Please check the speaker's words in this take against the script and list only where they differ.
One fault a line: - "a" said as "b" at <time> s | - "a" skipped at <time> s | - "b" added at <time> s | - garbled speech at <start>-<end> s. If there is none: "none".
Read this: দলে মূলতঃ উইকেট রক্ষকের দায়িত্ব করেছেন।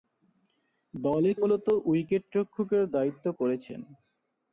none